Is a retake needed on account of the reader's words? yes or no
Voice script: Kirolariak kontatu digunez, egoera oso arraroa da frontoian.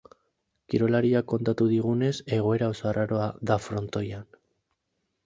no